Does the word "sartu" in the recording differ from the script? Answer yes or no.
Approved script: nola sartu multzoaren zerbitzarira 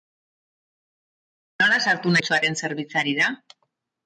no